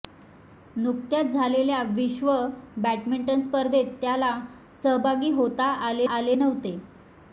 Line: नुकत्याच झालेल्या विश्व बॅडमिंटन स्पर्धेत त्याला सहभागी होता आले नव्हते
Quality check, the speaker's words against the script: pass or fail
fail